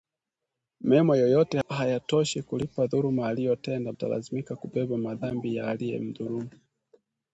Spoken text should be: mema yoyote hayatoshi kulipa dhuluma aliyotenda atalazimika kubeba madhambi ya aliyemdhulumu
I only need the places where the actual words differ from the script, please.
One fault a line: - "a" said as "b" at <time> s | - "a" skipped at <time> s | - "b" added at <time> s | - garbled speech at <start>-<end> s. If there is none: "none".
none